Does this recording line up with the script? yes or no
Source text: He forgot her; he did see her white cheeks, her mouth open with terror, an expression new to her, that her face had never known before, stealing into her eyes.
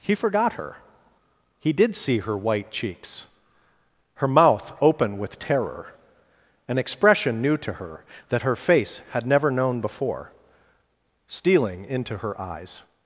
yes